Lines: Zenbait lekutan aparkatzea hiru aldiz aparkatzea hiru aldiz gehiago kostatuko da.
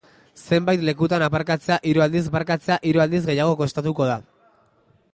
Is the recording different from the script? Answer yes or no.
no